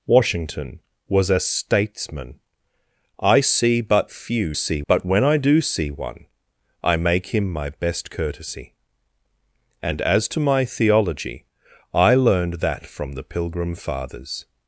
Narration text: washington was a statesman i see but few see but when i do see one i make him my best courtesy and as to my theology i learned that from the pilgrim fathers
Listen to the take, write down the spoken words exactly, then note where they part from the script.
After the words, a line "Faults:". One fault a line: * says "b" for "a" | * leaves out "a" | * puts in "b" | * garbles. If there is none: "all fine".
washington was a statesman i see but few see but when i do see one i make him my best courtesy and as to my theology i learned that from the pilgrim fathers
Faults:
all fine